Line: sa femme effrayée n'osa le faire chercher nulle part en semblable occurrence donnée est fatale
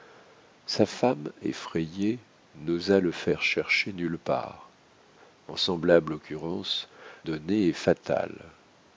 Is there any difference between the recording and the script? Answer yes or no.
no